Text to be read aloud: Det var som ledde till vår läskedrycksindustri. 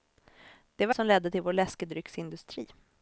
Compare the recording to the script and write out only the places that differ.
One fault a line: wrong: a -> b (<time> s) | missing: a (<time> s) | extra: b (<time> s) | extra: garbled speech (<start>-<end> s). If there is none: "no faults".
no faults